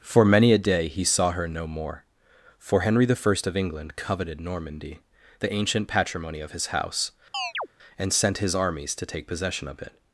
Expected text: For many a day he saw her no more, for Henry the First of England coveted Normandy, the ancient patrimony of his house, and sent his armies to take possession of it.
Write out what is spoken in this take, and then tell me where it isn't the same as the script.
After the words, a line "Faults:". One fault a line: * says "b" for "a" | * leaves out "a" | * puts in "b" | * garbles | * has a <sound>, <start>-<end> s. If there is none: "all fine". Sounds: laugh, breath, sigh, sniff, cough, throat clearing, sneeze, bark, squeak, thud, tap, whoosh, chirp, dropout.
For many a day he saw her no more, for Henry the First of England coveted Normandy, the ancient patrimony of his house, and sent his armies to take possession of it.
Faults:
* has a chirp, 7.3-7.7 s